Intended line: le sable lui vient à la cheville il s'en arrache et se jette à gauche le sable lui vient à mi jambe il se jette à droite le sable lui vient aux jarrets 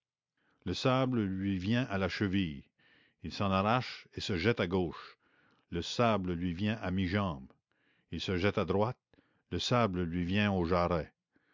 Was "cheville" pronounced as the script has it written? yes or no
yes